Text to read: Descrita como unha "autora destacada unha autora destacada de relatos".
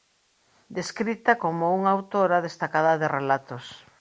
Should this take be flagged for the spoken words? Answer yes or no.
yes